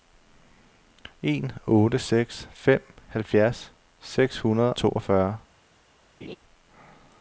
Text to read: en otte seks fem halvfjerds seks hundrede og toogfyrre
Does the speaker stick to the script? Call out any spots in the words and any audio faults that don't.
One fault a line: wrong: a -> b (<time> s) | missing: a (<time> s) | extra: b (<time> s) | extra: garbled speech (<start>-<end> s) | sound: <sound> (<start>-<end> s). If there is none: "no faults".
missing: og (4.7 s)
sound: laugh (6.2-6.4 s)